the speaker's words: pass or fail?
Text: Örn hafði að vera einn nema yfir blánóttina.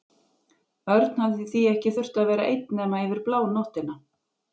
fail